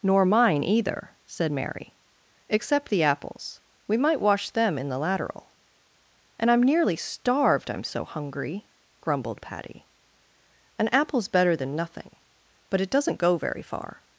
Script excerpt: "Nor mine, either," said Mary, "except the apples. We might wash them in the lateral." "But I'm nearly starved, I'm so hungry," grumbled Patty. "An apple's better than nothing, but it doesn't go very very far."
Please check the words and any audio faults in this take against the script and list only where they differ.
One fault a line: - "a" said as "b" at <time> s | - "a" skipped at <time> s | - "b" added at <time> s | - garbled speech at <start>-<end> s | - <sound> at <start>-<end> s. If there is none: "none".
- "But" said as "And" at 6.4 s
- "very" skipped at 13.6 s